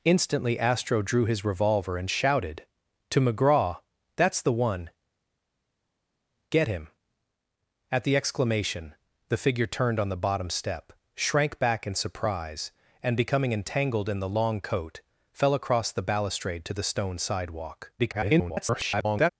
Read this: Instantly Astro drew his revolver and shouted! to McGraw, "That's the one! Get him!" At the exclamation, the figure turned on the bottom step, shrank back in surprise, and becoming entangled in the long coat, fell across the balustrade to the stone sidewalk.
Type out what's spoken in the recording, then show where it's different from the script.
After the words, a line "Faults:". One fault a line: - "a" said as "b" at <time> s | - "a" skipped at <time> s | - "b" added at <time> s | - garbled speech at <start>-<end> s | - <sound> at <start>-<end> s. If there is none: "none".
Instantly Astro drew his revolver and shouted! to McGraw, "That's the one! Get him!" At the exclamation, the figure turned on the bottom step, shrank back in surprise, and becoming entangled in the long coat, fell across the balustrade to the stone sidewalk. [garbled]
Faults:
- garbled speech at 18.0-19.3 s